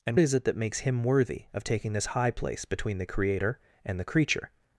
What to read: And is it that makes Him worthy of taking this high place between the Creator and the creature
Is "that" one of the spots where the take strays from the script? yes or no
no